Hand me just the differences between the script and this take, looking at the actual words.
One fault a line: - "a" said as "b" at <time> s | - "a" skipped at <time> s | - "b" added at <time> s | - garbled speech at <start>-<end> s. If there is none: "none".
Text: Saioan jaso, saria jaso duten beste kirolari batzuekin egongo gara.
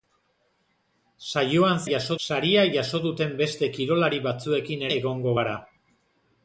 none